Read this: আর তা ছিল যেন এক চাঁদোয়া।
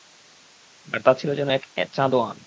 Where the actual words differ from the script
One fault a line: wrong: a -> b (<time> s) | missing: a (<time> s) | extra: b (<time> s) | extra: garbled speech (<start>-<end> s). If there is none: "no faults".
no faults